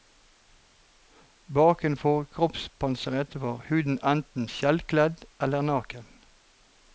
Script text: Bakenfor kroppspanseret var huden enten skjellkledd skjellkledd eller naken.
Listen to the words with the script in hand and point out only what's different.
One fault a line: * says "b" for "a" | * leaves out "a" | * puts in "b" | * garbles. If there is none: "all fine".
* leaves out "skjellkledd"